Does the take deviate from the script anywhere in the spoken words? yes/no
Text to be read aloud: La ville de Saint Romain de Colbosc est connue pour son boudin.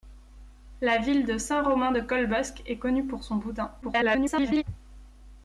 yes